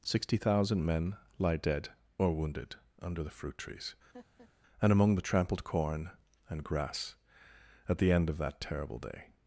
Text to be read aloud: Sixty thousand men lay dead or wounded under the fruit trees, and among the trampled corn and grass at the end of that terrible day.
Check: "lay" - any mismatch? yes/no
yes